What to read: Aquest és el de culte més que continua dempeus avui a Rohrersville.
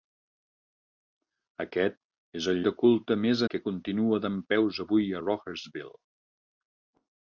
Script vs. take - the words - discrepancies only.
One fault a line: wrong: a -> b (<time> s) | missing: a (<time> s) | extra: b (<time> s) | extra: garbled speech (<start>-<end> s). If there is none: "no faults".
no faults